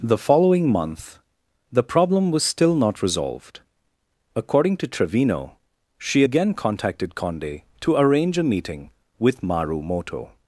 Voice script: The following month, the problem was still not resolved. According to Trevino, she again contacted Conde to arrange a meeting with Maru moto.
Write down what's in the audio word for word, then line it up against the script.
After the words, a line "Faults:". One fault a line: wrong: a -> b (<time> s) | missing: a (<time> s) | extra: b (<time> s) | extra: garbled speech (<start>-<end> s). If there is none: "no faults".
The following month, the problem was still not resolved. According to Trevino, she again contacted Conde to arrange a meeting with Maru moto.
Faults:
no faults